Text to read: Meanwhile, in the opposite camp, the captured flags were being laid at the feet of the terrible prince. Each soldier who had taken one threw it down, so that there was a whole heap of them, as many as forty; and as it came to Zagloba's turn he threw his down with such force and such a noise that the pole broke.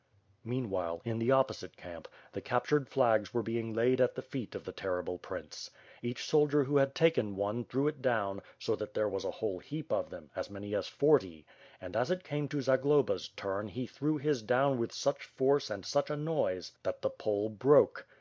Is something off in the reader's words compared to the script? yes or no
no